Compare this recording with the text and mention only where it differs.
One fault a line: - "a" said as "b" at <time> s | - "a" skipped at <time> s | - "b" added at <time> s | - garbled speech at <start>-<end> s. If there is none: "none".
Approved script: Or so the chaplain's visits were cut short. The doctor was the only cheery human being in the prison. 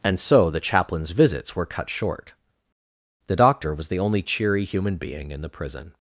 - "Or" said as "And" at 0.0 s